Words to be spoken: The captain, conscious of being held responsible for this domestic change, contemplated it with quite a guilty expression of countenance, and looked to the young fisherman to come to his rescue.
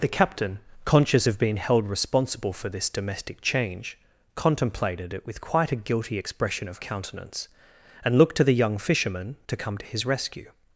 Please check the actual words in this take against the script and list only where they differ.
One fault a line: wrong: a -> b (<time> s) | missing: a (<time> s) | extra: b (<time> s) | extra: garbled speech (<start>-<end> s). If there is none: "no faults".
no faults